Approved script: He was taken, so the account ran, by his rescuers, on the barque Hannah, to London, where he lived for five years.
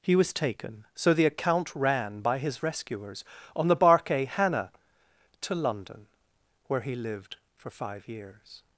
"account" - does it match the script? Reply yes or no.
yes